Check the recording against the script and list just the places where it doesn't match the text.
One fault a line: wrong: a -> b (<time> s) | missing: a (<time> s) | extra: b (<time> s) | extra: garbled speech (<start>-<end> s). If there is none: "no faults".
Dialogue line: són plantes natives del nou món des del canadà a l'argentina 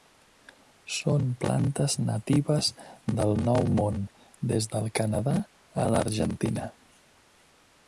no faults